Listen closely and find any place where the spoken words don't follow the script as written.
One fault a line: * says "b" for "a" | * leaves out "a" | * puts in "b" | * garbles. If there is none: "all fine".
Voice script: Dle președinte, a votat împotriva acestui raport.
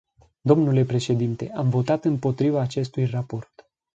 * says "am" for "a"